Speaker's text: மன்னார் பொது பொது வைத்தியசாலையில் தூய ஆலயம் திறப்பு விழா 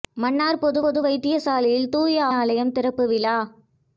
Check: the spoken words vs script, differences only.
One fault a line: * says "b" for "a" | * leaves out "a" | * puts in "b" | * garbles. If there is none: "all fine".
all fine